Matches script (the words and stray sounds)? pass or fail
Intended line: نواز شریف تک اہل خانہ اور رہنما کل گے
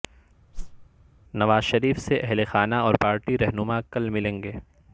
fail